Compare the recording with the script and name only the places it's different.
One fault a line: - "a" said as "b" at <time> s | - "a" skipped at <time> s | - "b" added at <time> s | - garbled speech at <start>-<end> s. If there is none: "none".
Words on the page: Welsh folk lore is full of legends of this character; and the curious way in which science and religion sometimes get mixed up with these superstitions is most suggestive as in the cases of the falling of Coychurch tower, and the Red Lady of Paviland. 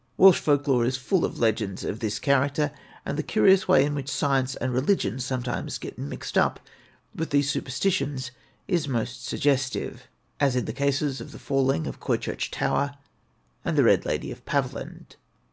none